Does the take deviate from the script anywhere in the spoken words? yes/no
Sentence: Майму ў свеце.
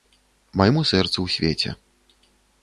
yes